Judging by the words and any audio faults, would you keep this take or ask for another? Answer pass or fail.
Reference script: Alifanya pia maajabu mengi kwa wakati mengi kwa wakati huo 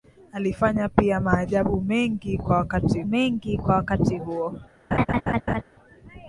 fail